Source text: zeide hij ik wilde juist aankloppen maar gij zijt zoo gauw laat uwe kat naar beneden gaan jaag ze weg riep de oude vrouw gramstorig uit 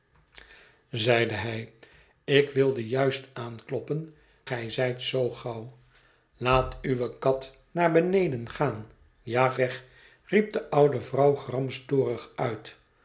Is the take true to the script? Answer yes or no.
no